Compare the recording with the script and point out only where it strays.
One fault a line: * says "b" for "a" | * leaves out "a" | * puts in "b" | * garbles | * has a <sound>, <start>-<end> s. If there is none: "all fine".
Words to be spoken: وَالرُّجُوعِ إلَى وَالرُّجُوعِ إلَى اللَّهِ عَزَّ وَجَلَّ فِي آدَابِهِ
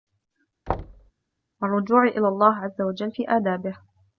* has a thud, 0.7-1.1 s
* leaves out "وَالرُّجُوعِ إلَى"